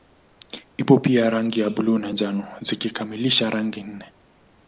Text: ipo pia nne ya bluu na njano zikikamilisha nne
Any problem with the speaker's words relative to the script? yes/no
yes